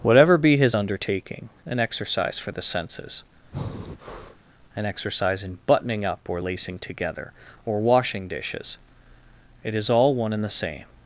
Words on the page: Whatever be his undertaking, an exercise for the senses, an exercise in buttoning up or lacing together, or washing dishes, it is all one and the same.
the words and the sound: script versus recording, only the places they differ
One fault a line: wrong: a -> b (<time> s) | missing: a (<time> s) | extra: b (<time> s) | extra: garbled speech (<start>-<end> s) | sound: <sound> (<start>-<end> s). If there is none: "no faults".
sound: breath (3.5-4.4 s)